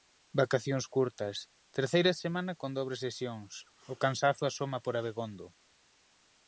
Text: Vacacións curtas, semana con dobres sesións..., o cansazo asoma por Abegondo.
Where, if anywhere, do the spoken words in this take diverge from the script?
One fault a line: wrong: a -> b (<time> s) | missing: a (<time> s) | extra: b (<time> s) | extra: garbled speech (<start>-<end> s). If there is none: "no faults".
extra: terceira (1.8 s)